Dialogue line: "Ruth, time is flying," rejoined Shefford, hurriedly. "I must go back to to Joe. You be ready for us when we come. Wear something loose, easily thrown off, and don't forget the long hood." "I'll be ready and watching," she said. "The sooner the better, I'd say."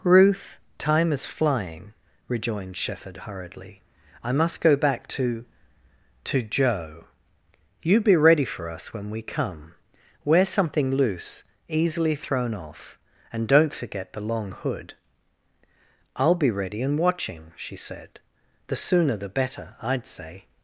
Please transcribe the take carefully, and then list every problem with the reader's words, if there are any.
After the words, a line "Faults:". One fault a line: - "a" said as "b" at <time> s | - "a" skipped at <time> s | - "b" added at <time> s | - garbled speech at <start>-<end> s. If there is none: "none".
"Ruth, time is flying," rejoined Shefford, hurriedly. "I must go back to to Joe. You be ready for us when we come. Wear something loose, easily thrown off, and don't forget the long hood." "I'll be ready and watching," she said. "The sooner the better, I'd say."
Faults:
none